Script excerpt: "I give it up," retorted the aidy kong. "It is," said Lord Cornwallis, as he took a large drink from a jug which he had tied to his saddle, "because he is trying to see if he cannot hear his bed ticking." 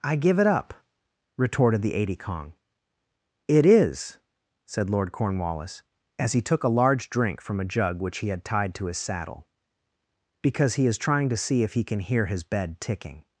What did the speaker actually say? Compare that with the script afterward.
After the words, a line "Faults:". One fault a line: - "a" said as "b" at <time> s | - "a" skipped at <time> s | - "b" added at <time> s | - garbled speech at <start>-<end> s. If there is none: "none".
"I give it up," retorted the aidy kong. "It is," said Lord Cornwallis, as he took a large drink from a jug which he had tied to his saddle, "because he is trying to see if he can hear his bed ticking."
Faults:
- "cannot" said as "can" at 11.8 s